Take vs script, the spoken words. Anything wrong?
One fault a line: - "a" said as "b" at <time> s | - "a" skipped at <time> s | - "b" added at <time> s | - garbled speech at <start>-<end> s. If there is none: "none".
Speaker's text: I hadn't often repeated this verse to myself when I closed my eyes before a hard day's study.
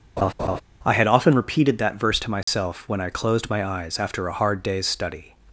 - "hadn't" said as "had" at 0.9 s
- "this" said as "that" at 1.8 s
- "before" said as "after" at 4.0 s